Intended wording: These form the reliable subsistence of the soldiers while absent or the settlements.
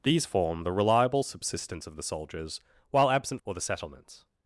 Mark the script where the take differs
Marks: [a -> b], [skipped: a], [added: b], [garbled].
These form the reliable subsistence of the soldiers while absent or the settlements.